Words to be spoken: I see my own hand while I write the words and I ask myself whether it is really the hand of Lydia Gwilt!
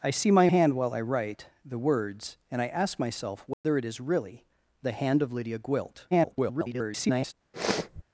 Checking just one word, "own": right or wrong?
wrong